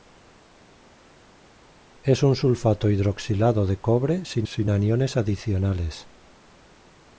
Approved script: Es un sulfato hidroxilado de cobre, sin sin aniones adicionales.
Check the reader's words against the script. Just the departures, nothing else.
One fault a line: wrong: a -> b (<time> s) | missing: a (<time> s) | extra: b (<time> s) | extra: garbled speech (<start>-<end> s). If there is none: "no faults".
no faults